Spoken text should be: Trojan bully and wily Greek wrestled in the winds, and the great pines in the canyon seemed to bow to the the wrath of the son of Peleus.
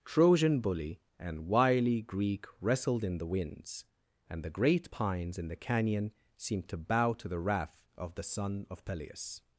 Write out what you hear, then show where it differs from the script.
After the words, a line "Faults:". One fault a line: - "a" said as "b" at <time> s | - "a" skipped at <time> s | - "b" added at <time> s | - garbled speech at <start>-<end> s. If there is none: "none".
Trojan bully and wily Greek wrestled in the winds, and the great pines in the canyon seemed to bow to the wrath of the son of Peleus.
Faults:
- "the" skipped at 7.4 s